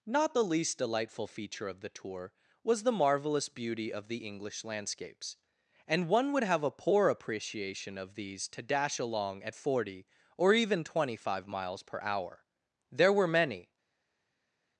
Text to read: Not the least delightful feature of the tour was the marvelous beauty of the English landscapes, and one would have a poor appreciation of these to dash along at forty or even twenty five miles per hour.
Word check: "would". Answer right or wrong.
right